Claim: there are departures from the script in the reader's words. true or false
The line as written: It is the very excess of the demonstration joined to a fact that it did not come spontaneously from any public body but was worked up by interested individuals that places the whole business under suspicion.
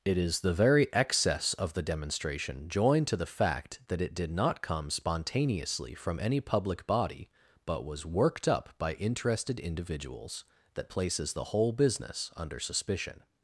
true